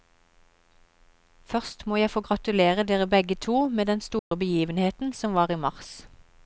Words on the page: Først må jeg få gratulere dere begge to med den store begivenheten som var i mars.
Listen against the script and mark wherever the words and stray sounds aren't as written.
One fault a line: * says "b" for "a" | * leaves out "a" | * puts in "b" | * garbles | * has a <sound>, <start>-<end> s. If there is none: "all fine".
* has a dropout, 4.2-4.3 s